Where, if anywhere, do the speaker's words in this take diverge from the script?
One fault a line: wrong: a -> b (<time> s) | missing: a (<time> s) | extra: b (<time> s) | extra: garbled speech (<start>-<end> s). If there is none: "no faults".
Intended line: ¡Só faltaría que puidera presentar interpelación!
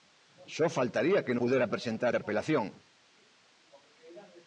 no faults